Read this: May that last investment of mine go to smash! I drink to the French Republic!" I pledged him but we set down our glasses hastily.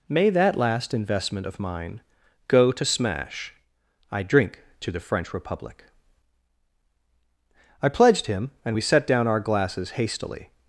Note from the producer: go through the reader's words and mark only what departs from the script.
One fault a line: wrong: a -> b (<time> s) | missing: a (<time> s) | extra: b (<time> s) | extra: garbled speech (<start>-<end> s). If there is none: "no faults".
wrong: but -> and (8.6 s)